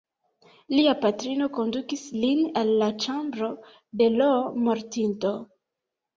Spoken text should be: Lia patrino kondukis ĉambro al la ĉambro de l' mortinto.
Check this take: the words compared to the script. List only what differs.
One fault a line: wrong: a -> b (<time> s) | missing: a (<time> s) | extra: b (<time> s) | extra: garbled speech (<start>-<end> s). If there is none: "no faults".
wrong: ĉambro -> lin (2.2 s)